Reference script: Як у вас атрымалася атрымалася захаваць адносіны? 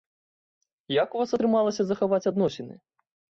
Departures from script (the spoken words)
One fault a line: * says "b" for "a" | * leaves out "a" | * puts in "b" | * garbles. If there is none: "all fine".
* leaves out "атрымалася"